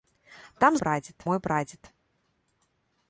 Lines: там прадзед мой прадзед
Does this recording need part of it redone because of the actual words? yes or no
no